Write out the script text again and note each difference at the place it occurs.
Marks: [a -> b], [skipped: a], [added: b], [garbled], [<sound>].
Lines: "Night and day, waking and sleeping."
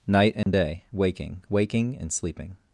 "Night and [dropout] day, waking [added: waking] and sleeping."